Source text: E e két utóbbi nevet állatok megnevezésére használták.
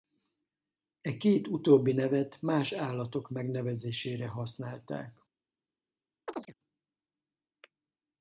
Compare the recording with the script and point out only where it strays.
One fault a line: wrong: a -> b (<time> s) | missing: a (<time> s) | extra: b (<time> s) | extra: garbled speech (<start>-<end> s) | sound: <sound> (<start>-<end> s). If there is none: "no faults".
missing: e (1.2 s)
extra: más (2.4 s)
sound: chirp (6.3-6.5 s)